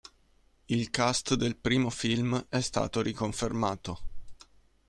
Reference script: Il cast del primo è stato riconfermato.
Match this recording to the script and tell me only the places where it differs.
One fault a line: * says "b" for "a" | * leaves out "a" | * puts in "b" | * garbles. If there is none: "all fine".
* puts in "film"